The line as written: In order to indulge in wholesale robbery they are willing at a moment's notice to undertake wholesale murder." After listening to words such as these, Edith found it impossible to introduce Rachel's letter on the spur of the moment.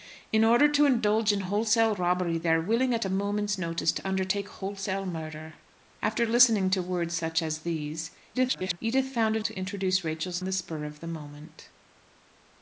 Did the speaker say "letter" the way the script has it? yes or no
no